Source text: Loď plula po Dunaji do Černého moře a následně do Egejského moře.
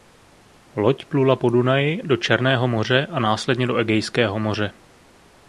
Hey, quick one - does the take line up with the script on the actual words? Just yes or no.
yes